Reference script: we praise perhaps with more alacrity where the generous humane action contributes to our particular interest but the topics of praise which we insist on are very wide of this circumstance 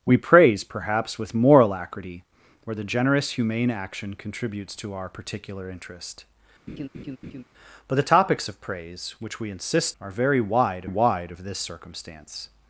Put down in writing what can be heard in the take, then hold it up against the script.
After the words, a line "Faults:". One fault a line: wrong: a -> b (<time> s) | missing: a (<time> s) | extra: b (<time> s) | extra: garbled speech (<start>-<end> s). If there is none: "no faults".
we praise perhaps with more alacrity where the generous humane action contributes to our particular interest but the topics of praise which we insist are very wide wide of this circumstance
Faults:
missing: on (10.0 s)
extra: wide (10.8 s)